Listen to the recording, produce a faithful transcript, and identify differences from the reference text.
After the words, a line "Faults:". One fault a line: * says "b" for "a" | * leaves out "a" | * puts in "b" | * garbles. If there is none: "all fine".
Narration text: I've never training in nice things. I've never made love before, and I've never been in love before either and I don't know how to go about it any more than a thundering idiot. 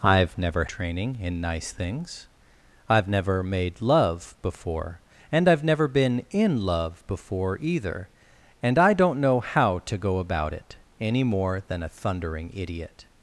I've never training in nice things. I've never made love before, and I've never been in love before either and I don't know how to go about it any more than a thundering idiot.
Faults:
all fine